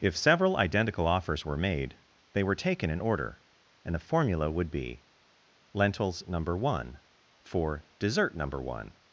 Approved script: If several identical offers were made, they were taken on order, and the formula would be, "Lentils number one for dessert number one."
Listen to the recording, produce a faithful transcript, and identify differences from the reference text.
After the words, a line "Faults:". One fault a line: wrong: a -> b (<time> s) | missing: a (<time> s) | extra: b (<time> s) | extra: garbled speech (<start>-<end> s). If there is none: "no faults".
If several identical offers were made, they were taken in order, and the formula would be, "Lentils number one for dessert number one."
Faults:
wrong: on -> in (2.9 s)